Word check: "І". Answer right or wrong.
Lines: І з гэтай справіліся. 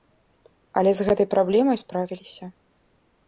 wrong